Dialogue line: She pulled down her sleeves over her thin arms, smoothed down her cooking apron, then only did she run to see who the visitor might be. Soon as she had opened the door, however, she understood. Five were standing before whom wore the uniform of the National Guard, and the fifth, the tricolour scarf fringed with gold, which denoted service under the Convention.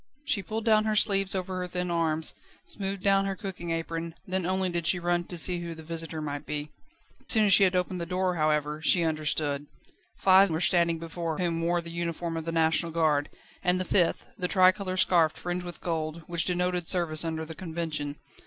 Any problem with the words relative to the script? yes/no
no